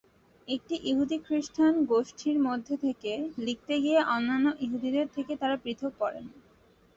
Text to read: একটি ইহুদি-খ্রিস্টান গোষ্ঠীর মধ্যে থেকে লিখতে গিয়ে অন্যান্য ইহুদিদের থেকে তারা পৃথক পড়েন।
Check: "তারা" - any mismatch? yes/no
no